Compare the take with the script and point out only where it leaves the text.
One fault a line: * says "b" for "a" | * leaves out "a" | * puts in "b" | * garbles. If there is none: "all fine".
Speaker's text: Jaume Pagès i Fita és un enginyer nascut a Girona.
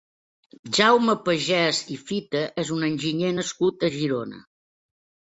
all fine